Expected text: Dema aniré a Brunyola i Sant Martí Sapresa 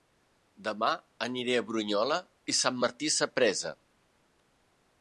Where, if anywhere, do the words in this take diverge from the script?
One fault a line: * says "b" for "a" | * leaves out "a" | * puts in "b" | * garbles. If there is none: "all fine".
all fine